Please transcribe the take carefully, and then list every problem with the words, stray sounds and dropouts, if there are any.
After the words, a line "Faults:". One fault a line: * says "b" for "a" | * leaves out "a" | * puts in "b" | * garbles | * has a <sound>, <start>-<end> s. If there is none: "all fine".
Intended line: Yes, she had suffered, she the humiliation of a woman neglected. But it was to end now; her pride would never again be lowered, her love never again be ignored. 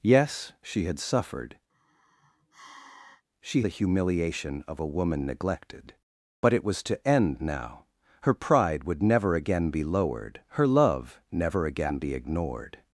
Yes, she had suffered, she the humiliation of a woman neglected. But it was to end now; her pride would never again be lowered, her love never again be ignored.
Faults:
* has a sigh, 1.7-3.2 s